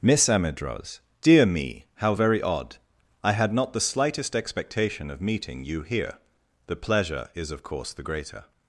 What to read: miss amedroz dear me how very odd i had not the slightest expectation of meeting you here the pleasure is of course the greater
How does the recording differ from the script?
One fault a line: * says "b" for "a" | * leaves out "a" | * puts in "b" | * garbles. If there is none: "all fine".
all fine